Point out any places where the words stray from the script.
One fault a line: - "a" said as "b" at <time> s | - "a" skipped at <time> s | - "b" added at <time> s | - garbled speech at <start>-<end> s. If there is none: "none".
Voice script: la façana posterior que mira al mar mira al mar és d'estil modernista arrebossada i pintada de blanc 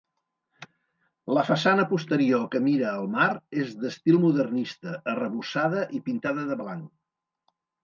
- "mira al mar" skipped at 3.3 s